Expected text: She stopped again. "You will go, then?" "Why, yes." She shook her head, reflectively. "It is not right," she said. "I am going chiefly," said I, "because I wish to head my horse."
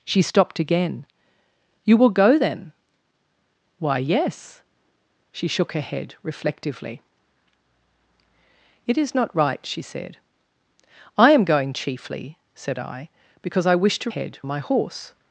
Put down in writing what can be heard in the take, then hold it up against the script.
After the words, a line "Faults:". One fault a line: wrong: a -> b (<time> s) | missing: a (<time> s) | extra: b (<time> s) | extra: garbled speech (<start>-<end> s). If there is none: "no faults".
She stopped again. "You will go, then?" "Why, yes." She shook her head, reflectively. "It is not right," she said. "I am going chiefly," said I, "because I wish to head my horse."
Faults:
no faults